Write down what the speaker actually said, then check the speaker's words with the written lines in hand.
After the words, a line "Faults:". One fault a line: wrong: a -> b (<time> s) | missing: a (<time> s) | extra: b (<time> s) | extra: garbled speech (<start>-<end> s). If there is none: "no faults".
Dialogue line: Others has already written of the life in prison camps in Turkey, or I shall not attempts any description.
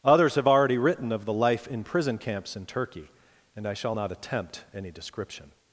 Others have already written of the life in prison camps in Turkey, and I shall not attempt any description.
Faults:
wrong: has -> have (0.3 s)
wrong: or -> and (3.5 s)
wrong: attempts -> attempt (4.1 s)